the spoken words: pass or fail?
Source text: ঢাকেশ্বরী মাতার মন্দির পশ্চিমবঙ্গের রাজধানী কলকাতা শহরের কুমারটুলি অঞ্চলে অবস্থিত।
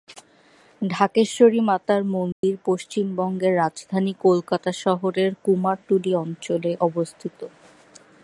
pass